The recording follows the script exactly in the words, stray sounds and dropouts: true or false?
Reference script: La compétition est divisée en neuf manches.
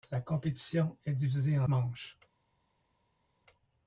false